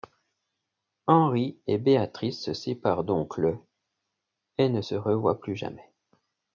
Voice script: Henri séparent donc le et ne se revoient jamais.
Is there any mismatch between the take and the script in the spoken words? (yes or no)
yes